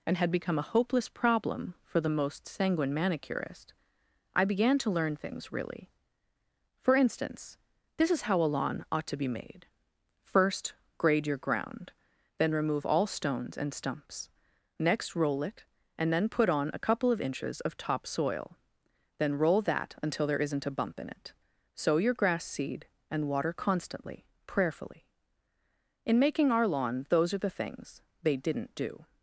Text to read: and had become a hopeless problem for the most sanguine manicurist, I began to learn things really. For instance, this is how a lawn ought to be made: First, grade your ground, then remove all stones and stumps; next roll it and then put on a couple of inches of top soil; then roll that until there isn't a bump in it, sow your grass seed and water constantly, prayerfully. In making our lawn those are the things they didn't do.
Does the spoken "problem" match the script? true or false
true